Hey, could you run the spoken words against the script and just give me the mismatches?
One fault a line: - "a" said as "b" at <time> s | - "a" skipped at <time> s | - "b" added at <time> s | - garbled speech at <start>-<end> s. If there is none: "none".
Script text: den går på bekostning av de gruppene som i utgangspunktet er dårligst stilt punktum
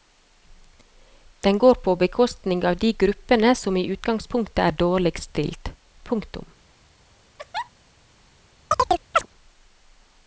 none